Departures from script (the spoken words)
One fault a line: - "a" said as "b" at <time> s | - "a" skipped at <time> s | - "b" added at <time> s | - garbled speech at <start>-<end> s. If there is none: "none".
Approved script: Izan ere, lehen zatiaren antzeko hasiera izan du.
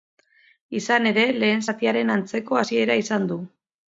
none